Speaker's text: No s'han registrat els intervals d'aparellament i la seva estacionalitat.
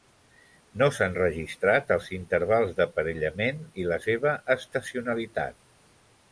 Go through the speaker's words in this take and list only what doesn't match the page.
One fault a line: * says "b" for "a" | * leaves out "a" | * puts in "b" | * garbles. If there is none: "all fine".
all fine